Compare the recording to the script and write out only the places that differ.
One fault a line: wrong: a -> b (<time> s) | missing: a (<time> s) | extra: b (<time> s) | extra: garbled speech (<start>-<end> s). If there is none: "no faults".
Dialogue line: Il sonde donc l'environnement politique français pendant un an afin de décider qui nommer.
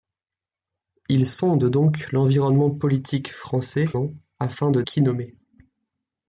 missing: pendant un (3.9 s)
missing: décider (4.8 s)